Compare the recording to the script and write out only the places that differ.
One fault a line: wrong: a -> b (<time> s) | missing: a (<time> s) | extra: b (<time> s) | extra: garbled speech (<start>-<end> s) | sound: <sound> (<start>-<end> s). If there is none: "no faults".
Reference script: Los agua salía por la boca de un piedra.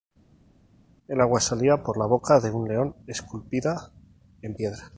wrong: Los -> El (1.1 s)
extra: león esculpida en (2.7 s)